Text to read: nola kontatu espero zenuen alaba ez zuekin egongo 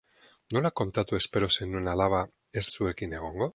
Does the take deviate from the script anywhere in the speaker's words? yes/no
no